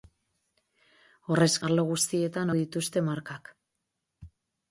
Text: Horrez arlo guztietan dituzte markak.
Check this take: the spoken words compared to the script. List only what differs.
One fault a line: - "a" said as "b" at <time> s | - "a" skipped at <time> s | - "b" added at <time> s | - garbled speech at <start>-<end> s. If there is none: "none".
none